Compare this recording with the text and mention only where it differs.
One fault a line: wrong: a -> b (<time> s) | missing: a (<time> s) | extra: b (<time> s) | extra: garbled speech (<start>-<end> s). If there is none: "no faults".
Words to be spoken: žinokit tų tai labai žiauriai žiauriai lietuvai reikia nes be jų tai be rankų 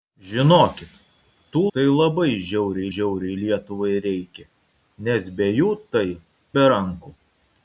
no faults